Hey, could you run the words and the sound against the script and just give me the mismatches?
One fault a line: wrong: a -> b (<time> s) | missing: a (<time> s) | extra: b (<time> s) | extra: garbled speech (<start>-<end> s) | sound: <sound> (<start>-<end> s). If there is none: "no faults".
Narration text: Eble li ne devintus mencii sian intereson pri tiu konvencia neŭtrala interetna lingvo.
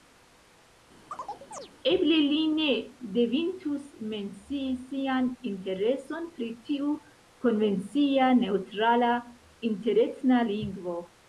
sound: chirp (1.1-1.7 s)